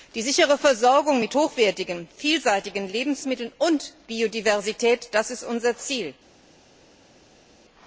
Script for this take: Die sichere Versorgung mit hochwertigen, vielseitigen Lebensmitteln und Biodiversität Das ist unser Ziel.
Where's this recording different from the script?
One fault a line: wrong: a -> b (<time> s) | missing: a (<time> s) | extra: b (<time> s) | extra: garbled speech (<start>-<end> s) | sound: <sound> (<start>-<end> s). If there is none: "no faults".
no faults